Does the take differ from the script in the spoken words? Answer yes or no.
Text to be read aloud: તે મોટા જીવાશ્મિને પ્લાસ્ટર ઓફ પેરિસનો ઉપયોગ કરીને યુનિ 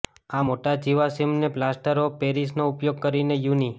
yes